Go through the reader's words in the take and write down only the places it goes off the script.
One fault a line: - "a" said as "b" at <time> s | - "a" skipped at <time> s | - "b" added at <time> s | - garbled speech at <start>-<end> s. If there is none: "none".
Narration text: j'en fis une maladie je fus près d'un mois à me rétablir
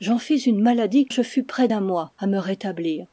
none